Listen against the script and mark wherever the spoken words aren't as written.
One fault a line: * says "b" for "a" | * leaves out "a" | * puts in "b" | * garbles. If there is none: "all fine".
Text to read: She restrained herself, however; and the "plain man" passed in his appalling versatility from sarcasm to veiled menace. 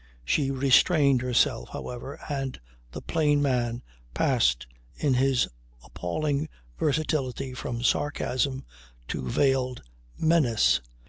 all fine